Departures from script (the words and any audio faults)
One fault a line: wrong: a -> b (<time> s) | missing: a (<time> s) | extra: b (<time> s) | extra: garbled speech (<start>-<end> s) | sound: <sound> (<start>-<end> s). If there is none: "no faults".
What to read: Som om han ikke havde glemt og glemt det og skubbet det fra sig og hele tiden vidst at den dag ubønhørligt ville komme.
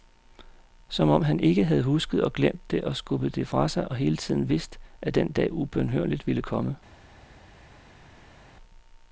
wrong: glemt -> husket (1.8 s)